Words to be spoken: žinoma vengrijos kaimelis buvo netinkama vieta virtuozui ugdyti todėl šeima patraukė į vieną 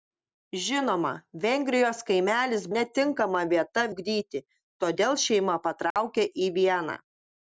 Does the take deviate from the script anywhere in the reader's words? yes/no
yes